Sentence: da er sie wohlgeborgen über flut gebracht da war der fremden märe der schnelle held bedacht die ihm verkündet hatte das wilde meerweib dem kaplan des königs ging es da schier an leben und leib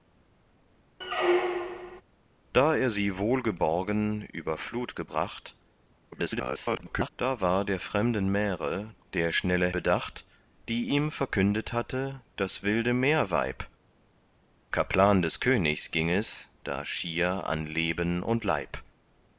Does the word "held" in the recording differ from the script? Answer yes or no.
yes